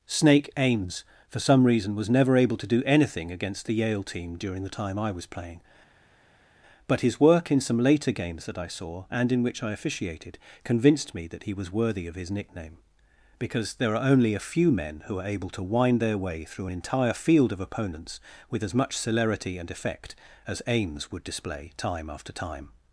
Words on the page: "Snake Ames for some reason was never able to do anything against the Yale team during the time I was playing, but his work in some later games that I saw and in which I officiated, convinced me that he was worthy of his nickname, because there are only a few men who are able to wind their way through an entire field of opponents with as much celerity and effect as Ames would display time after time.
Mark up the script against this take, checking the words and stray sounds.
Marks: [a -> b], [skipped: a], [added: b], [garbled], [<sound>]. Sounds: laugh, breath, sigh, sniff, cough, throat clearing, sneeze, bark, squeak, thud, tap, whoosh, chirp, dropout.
"Snake Ames for some reason was never able to do anything against the Yale team during the time I was playing, but his work in some later games that I saw and in which I officiated, convinced me that he was worthy of his nickname, because there are only a few men who are able to wind their way through an entire field of opponents with as much celerity and effect as Ames would display time after time.